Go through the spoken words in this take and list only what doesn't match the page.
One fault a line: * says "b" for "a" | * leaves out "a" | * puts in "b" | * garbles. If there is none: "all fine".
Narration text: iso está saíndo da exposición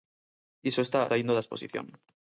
all fine